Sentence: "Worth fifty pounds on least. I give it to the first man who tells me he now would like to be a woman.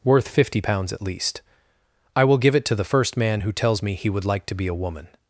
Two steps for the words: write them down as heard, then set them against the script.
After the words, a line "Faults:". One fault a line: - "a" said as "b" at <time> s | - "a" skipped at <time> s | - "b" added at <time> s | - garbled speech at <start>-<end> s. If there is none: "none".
"Worth fifty pounds at least. I will give it to the first man who tells me he would like to be a woman.
Faults:
- "on" said as "at" at 0.9 s
- "will" added at 2.2 s
- "now" skipped at 4.1 s